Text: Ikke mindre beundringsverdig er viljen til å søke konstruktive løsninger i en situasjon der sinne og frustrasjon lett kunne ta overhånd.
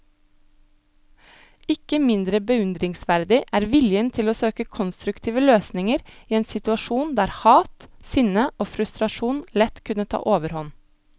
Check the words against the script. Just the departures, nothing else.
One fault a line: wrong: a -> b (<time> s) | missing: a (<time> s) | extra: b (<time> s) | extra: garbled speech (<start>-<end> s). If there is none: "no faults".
extra: hat (7.4 s)